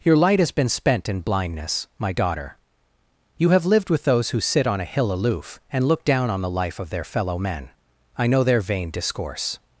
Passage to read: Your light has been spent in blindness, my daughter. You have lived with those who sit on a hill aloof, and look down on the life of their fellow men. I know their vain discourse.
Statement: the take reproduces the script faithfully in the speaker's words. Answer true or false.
true